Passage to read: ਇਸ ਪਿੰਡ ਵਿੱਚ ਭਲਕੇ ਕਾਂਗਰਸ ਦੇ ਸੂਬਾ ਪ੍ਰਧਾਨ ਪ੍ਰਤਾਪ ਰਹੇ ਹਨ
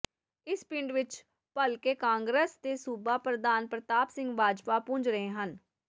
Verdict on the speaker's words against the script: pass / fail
fail